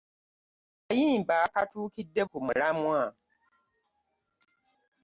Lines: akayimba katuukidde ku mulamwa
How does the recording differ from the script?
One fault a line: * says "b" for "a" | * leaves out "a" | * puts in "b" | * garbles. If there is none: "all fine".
all fine